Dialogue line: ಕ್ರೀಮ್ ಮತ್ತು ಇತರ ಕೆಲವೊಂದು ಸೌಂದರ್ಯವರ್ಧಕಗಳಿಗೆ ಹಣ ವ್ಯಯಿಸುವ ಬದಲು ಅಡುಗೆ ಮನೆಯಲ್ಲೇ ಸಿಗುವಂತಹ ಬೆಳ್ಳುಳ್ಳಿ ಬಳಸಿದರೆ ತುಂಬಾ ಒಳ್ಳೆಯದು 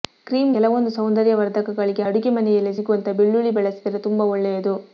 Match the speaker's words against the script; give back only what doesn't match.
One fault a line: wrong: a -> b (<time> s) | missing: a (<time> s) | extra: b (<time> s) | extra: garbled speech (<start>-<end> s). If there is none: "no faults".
missing: ಮತ್ತು ಇತರ (0.5 s)
missing: ಹಣ ವ್ಯಯಿಸುವ ಬದಲು (2.0 s)